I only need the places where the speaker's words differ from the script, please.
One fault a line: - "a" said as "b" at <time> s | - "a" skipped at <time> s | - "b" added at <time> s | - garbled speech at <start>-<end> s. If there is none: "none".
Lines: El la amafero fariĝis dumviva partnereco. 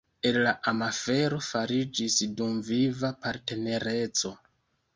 none